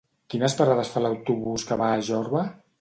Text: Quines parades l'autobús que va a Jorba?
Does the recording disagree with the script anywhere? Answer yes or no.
yes